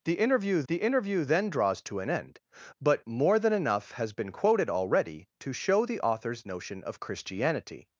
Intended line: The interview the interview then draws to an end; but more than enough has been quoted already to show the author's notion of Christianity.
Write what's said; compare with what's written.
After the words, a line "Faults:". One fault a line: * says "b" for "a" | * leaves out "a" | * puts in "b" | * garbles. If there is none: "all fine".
The interview the interview then draws to an end; but more than enough has been quoted already to show the author's notion of Christianity.
Faults:
all fine